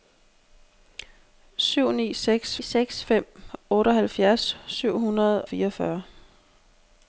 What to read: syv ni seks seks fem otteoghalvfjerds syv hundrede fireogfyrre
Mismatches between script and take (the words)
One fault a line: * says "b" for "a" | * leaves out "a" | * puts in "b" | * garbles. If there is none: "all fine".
all fine